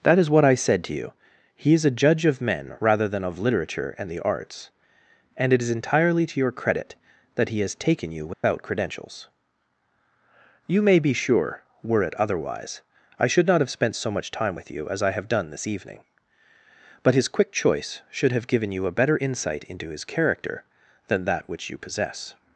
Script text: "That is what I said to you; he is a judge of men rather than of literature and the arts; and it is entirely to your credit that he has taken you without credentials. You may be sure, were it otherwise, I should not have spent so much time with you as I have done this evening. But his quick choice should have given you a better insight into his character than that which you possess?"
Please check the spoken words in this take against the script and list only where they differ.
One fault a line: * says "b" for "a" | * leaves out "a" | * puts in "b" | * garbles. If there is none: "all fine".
all fine